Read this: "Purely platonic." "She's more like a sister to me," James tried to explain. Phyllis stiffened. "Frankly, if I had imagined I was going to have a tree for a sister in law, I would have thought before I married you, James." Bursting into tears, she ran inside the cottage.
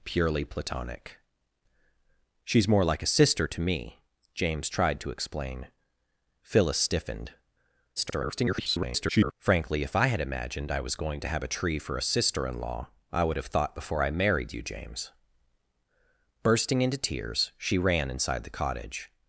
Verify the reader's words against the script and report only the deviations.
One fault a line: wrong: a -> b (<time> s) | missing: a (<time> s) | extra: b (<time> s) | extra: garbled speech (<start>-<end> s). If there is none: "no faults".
extra: garbled speech (8.0-9.3 s)